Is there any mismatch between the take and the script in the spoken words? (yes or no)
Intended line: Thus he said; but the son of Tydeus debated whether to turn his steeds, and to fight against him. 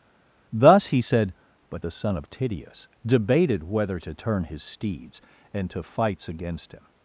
yes